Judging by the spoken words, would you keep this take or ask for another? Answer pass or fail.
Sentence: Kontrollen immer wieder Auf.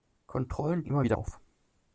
pass